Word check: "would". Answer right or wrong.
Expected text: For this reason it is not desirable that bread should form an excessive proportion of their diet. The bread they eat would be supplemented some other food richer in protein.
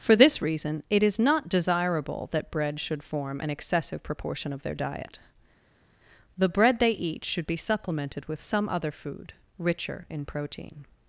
wrong